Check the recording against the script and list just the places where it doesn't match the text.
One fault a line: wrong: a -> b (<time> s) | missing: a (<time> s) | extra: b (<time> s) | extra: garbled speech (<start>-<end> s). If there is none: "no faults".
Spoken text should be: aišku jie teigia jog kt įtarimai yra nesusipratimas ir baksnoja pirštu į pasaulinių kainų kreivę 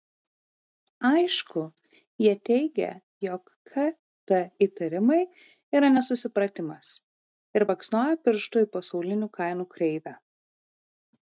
no faults